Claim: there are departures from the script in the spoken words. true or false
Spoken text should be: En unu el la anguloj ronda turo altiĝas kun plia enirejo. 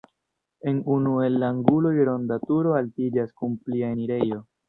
false